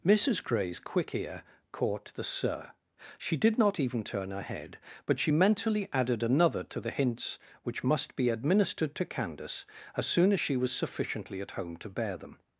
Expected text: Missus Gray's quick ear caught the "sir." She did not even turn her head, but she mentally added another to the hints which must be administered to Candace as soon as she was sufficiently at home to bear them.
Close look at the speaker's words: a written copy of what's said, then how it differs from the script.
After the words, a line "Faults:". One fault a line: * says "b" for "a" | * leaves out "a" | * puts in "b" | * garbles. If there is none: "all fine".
Missus Gray's quick ear caught the "sir." She did not even turn her head, but she mentally added another to the hints which must be administered to Candace as soon as she was sufficiently at home to bear them.
Faults:
all fine